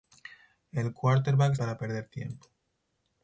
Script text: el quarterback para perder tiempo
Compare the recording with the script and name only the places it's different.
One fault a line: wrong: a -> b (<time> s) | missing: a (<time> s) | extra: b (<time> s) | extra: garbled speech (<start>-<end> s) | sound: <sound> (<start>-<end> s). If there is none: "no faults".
no faults